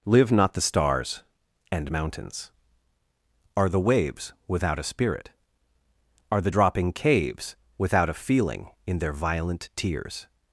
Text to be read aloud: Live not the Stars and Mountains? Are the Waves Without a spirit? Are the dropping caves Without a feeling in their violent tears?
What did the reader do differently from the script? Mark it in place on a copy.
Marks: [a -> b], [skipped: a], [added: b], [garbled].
Live not the Stars and Mountains? Are the Waves Without a spirit? Are the dropping caves Without a feeling in their violent tears?